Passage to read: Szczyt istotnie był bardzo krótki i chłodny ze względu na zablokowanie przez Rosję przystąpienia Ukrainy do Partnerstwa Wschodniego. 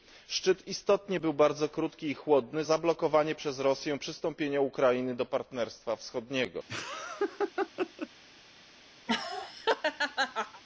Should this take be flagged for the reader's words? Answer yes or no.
yes